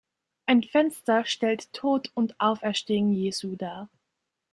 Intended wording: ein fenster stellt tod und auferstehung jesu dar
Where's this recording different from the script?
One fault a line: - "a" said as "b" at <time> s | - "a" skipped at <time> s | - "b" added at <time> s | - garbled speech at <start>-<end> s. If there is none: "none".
none